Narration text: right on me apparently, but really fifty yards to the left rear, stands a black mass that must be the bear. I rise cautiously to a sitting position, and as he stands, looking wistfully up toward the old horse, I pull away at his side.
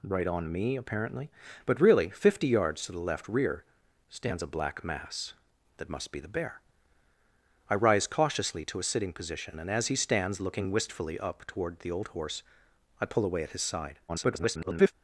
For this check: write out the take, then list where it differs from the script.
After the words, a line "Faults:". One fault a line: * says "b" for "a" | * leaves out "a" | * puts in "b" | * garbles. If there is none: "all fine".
right on me apparently, but really fifty yards to the left rear, stands a black mass that must be the bear. I rise cautiously to a sitting position, and as he stands, looking wistfully up toward the old horse, I pull away at his side. [garbled]
Faults:
* garbles